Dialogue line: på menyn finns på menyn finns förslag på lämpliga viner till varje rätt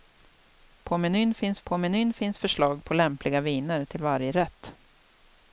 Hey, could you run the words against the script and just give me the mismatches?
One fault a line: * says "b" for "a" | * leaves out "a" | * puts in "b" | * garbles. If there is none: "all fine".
all fine